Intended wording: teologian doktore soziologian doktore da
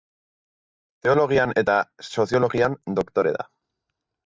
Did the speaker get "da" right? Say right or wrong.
right